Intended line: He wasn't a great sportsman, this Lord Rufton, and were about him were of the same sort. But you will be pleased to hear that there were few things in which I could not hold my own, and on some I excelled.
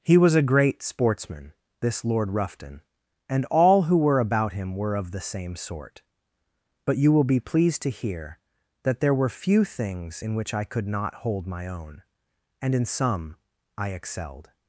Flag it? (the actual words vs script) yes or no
yes